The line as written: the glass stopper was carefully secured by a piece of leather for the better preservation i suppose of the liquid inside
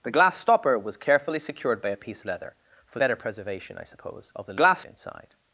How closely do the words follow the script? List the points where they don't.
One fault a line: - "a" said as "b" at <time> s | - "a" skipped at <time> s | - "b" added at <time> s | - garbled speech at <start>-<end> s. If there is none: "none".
- "of" skipped at 2.2 s
- "the" skipped at 3.0 s
- "liquid" said as "glass" at 4.5 s